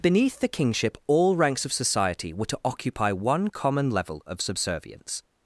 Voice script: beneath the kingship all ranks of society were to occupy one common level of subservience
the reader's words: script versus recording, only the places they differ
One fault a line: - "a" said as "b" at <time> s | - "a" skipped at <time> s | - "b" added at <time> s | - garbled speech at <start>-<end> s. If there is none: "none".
none